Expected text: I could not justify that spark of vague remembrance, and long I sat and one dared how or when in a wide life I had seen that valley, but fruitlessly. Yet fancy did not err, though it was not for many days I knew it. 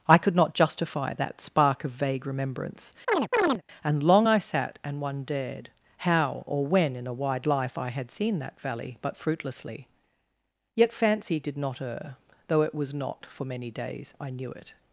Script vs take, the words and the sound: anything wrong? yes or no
yes